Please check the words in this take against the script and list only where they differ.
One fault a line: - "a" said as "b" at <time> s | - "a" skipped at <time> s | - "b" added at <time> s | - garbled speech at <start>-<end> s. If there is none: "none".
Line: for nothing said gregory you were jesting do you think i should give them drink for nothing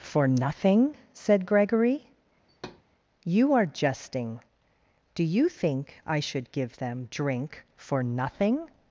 - "were" said as "are" at 3.5 s